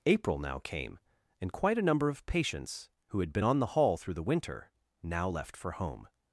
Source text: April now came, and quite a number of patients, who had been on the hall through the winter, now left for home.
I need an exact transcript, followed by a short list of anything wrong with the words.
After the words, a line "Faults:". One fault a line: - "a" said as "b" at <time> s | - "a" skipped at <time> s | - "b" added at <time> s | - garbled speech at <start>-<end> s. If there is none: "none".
April now came, and quite a number of patients, who had been on the hall through the winter, now left for home.
Faults:
none